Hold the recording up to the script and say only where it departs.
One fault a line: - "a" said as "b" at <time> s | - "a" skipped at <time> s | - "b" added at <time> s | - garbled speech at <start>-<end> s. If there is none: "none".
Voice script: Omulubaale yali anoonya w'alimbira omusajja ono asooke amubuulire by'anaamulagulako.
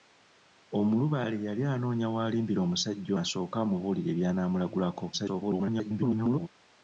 - "ono" skipped at 3.1 s
- garbled speech at 5.1-6.5 s